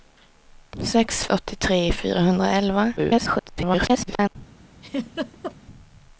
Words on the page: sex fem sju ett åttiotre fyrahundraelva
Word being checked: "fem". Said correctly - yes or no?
no